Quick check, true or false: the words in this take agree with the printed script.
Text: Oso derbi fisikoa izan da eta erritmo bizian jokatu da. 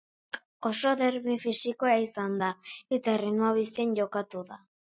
true